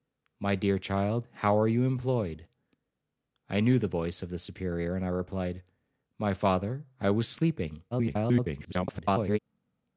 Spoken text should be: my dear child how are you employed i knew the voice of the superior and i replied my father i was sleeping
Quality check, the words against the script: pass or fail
fail